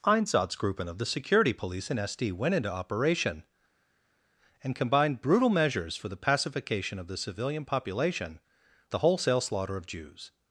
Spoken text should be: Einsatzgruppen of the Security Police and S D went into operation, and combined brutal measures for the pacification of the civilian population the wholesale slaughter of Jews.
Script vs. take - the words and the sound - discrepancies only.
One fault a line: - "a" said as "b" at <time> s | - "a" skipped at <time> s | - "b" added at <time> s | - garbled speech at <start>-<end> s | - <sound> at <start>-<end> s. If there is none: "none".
none